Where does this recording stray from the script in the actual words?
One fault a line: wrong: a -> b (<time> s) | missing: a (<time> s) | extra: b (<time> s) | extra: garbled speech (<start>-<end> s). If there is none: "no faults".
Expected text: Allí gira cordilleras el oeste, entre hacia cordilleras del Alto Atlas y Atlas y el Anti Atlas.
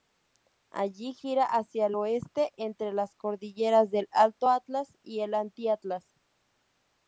wrong: cordilleras -> hacia (1.4 s)
wrong: hacia -> las (2.9 s)
missing: Atlas y (5.2 s)